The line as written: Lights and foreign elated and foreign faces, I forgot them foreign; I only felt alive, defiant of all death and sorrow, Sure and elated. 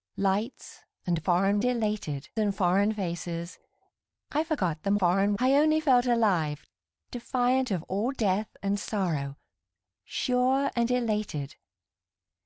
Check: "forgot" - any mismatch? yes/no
no